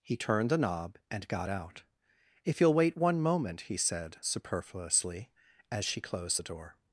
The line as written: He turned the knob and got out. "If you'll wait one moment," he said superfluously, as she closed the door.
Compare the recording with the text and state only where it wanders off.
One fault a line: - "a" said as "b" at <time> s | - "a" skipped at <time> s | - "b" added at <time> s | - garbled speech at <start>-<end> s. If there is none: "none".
none